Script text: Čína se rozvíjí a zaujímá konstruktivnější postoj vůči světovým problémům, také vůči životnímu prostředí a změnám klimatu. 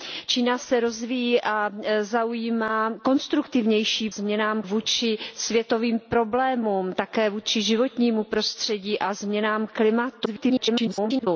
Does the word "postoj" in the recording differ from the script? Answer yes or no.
yes